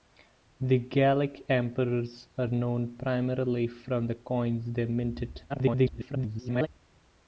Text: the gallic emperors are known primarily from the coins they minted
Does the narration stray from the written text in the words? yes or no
yes